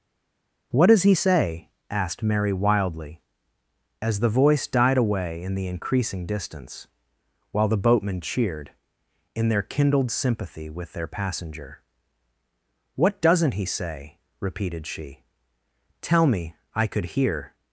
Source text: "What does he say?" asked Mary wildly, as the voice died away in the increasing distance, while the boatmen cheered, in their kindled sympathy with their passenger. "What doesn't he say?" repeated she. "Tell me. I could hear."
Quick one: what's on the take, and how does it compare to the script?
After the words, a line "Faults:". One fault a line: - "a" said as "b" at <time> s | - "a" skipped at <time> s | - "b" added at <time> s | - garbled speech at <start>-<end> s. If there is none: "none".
"What does he say?" asked Mary wildly, as the voice died away in the increasing distance, while the boatmen cheered, in their kindled sympathy with their passenger. "What doesn't he say?" repeated she. "Tell me. I could hear."
Faults:
none